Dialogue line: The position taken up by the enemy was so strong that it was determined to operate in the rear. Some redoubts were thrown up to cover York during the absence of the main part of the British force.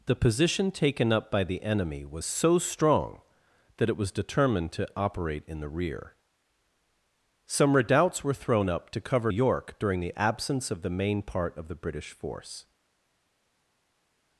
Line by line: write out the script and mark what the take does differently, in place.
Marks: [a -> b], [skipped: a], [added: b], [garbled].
The position taken up by the enemy was so strong that it was determined to operate in the rear. Some redoubts were thrown up to cover York during the absence of the main part of the British force.